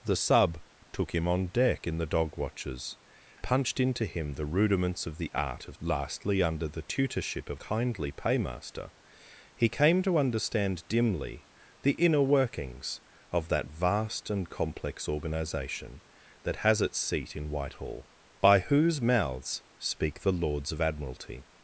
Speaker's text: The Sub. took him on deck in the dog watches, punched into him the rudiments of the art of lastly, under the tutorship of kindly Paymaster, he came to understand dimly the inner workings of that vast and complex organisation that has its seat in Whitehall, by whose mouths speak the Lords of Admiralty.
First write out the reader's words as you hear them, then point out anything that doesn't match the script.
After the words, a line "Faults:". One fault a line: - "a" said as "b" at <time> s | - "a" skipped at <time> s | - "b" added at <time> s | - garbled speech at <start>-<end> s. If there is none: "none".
The Sub. took him on deck in the dog watches, punched into him the rudiments of the art of lastly, under the tutorship of kindly Paymaster, he came to understand dimly the inner workings of that vast and complex organisation that has its seat in Whitehall, by whose mouths speak the Lords of Admiralty.
Faults:
none